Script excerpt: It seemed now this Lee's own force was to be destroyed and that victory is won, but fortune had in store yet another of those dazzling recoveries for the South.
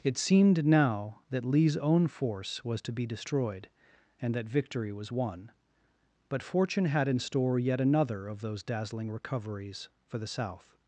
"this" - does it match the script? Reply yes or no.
no